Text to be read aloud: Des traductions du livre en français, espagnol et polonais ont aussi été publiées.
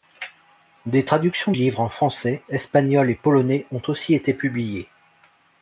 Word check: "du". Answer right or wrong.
wrong